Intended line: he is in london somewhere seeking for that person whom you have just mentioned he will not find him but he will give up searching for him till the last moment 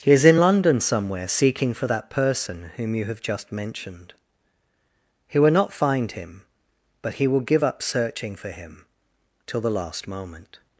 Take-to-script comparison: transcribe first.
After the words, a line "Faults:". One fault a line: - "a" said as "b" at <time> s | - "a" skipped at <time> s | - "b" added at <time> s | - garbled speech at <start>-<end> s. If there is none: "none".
he is in london somewhere seeking for that person whom you have just mentioned he will not find him but he will give up searching for him till the last moment
Faults:
none